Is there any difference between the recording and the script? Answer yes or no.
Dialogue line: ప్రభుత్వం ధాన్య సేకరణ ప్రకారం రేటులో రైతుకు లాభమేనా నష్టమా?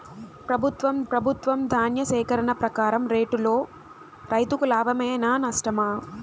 yes